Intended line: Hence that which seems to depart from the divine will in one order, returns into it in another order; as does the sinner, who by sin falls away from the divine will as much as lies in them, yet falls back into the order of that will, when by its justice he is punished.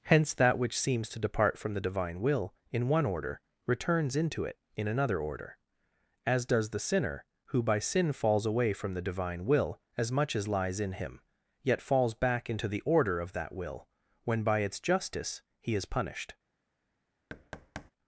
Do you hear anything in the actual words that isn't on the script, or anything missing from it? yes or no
yes